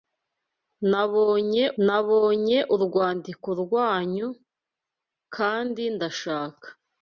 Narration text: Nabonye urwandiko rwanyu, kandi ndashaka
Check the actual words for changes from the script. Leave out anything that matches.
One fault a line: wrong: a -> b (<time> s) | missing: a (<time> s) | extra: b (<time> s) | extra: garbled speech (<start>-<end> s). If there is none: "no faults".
extra: nabonye (1.8 s)